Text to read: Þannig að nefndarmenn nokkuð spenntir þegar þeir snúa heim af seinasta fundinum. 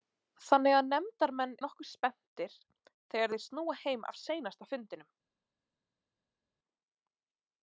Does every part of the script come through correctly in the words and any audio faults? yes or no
yes